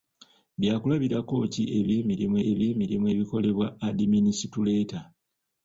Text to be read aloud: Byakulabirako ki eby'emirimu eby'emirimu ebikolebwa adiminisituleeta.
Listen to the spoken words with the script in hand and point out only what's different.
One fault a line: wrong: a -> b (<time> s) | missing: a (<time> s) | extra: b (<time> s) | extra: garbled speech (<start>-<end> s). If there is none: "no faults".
no faults